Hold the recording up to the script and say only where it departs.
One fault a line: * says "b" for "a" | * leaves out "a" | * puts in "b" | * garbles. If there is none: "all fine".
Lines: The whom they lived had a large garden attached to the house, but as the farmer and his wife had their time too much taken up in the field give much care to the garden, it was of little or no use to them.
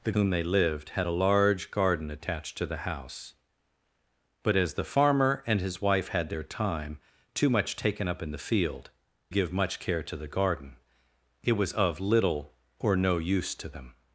all fine